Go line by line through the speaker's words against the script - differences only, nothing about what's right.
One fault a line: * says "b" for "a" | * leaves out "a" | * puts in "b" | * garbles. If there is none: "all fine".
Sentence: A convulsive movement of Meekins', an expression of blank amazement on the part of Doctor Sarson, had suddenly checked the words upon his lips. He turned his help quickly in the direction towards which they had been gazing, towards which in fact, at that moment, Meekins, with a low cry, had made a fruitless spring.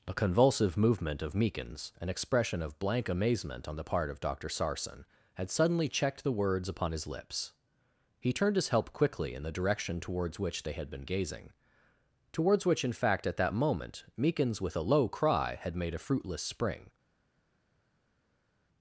all fine